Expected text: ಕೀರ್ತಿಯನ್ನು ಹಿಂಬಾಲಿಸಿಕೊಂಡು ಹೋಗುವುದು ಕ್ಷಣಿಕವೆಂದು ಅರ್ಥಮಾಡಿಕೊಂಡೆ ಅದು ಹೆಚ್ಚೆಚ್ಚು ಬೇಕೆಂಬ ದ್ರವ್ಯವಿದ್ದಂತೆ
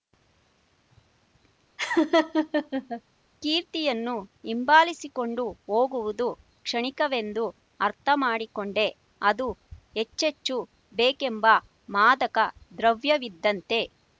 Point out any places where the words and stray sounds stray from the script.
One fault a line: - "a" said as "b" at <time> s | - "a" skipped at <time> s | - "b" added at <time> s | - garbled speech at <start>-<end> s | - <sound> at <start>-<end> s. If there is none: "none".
- laugh at 1.8-3.0 s
- "ಮಾದಕ" added at 11.9 s